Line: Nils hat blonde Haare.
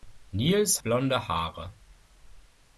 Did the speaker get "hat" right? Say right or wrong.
wrong